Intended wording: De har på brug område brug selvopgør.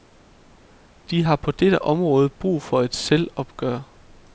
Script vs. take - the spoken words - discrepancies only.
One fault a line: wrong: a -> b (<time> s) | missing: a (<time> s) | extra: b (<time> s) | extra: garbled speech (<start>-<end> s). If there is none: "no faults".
wrong: brug -> dette (1.5 s)
extra: for et (2.6 s)